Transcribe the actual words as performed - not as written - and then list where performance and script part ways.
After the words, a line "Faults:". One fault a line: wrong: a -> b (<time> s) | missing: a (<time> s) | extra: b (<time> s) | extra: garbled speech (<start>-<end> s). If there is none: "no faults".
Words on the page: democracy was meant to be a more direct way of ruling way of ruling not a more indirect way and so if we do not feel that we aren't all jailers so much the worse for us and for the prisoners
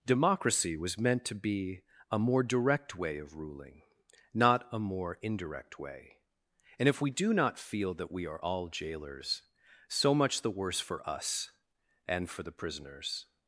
democracy was meant to be a more direct way of ruling not a more indirect way and if we do not feel that we are all jailers so much the worse for us and for the prisoners
Faults:
missing: way of ruling (3.8 s)
missing: so (6.9 s)
wrong: aren't -> are (8.2 s)